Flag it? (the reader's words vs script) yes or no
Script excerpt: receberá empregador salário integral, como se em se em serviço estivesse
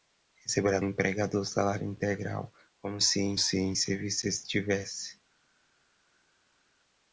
no